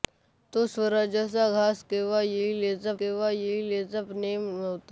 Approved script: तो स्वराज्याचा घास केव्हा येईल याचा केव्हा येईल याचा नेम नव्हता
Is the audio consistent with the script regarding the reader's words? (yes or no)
yes